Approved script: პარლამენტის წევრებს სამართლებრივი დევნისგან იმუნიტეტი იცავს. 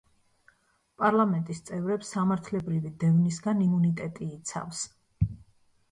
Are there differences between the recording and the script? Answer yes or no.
no